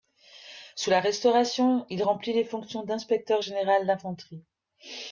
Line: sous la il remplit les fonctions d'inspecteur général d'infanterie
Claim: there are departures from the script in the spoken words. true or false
true